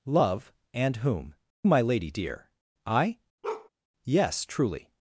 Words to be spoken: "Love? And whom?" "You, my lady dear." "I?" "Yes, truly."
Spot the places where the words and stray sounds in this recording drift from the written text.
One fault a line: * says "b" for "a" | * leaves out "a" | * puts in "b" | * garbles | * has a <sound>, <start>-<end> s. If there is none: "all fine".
* leaves out "You"
* has a bark, 3.4-3.7 s